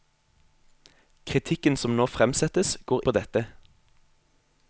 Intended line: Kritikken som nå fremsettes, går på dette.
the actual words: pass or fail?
pass